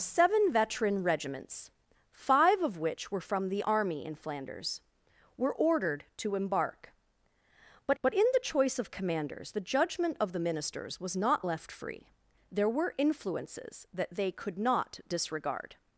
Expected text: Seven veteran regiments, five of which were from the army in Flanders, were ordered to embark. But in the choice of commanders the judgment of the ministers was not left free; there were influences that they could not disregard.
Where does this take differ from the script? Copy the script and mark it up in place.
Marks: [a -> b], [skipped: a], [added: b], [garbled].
Seven veteran regiments, five of which were from the army in Flanders, were ordered to embark. But [added: but] in the choice of commanders the judgment of the ministers was not left free; there were influences that they could not disregard.